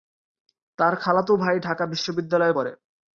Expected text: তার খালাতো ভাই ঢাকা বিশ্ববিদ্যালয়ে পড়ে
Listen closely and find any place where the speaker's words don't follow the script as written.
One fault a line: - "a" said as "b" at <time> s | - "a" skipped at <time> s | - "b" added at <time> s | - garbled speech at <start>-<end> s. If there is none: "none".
none